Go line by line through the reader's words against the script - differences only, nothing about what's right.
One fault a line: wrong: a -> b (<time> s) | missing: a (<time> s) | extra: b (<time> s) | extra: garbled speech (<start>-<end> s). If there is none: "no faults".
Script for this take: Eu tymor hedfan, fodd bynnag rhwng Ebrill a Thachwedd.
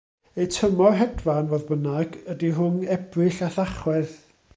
extra: ydy (2.3 s)